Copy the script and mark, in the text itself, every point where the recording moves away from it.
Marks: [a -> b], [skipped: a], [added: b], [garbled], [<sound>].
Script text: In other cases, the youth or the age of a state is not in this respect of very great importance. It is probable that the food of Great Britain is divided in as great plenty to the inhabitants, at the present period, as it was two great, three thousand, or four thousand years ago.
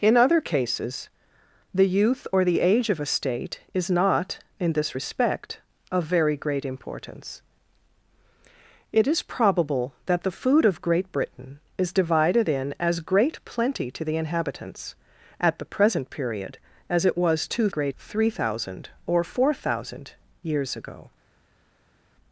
In other cases, the youth or the age of a state is not in this respect of very great importance. It is probable that the food of Great Britain is divided in as great plenty to the inhabitants, at the present period, as it was two great, three thousand, or four thousand years ago.